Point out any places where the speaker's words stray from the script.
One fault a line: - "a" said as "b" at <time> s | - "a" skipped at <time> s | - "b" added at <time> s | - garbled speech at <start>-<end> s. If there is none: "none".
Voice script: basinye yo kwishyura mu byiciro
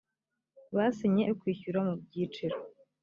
none